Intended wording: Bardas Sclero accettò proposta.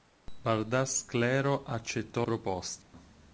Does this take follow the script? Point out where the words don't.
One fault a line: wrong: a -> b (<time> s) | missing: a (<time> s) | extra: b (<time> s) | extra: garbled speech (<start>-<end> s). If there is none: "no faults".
no faults